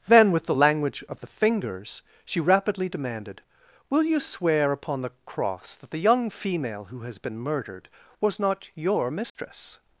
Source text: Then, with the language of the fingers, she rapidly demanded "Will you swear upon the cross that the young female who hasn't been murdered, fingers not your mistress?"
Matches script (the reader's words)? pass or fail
fail